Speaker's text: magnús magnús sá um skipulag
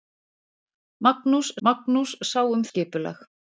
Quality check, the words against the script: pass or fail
pass